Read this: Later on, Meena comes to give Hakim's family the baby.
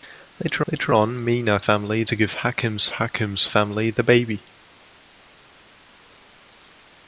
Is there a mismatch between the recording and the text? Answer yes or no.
yes